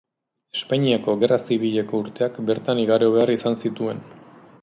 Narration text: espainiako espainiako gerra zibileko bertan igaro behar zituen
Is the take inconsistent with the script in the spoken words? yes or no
yes